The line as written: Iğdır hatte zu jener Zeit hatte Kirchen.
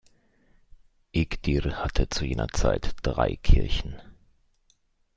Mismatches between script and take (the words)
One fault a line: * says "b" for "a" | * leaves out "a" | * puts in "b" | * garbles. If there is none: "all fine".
* says "drei" for "hatte"